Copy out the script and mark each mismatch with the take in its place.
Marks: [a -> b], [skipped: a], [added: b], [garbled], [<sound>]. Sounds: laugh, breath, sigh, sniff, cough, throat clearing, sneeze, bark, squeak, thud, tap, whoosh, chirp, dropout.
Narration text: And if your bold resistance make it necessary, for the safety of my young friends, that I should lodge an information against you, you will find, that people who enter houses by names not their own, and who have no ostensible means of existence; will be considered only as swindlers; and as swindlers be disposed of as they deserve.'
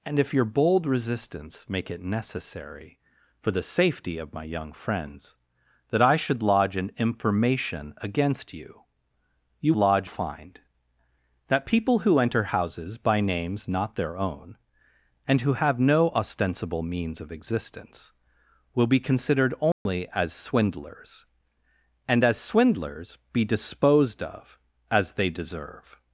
And if your bold resistance make it necessary, for the safety of my young friends, that I should lodge an information against you, you [will -> lodge] find, that people who enter houses by names not their own, and who have no ostensible means of existence; will be considered only [dropout] as swindlers; and as swindlers be disposed of as they deserve.'